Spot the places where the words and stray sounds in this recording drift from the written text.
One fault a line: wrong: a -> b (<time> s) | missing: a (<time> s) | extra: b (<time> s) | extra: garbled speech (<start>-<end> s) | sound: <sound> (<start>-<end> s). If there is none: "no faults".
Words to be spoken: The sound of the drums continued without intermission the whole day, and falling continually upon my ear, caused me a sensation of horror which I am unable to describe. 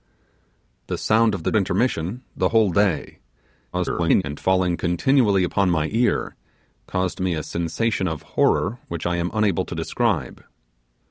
missing: drums continued without (1.5 s)
extra: garbled speech (3.7-4.2 s)